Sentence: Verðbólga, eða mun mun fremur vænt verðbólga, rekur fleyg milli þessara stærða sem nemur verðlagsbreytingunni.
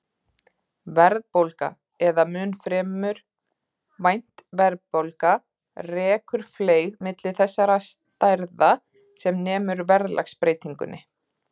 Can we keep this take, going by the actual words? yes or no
no